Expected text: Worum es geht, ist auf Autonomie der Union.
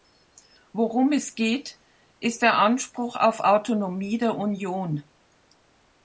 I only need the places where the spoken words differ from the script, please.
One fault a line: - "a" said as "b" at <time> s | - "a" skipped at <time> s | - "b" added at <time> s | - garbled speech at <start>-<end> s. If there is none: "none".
- "der Anspruch" added at 2.4 s